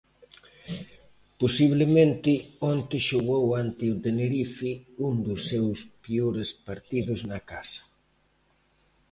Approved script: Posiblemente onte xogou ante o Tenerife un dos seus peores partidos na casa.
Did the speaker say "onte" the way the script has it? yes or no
yes